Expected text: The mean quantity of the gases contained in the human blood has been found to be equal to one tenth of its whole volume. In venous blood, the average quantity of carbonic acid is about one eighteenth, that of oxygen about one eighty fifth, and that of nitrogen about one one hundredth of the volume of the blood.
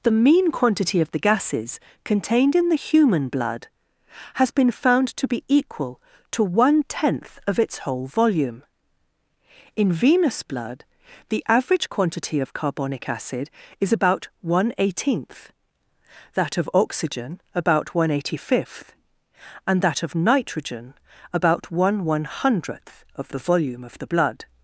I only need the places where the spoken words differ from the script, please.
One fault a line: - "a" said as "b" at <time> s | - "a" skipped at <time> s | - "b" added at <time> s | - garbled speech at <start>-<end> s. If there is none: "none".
none